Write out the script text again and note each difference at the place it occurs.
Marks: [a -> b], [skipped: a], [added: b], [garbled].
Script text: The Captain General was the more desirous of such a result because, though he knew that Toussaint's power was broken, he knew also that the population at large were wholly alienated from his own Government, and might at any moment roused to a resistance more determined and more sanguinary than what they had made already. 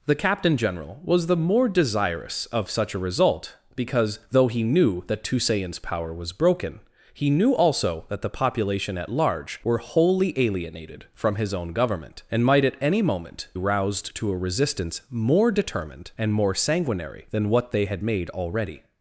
The Captain General was the more desirous of such a result because, though he knew that Toussaint's power was broken, he knew also that the population at large were wholly alienated from his own Government, and might at any moment roused to a resistance more determined and more sanguinary than what they had made already.